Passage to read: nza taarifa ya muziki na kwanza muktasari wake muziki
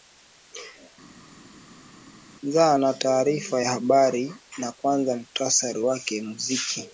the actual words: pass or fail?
fail